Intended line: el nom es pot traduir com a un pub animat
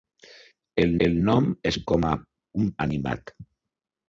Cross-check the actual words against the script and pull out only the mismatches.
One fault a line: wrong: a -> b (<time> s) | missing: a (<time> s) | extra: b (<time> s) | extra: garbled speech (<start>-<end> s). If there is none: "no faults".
extra: el (1.1 s)
missing: pot traduir (1.8 s)
missing: pub (2.7 s)